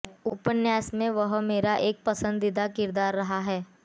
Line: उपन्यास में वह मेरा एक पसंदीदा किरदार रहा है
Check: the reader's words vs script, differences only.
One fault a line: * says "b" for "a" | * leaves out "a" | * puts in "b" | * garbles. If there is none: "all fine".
all fine